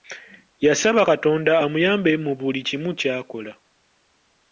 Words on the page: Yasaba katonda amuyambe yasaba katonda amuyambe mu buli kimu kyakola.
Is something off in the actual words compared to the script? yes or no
yes